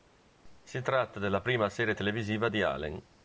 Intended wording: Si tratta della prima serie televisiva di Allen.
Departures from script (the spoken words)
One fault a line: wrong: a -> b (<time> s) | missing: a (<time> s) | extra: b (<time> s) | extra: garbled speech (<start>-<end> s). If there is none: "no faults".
no faults